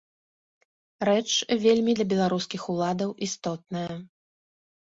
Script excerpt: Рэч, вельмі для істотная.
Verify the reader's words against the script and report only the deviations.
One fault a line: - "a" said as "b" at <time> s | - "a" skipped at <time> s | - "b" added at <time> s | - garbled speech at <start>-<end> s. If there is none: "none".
- "беларускіх уладаў" added at 2.1 s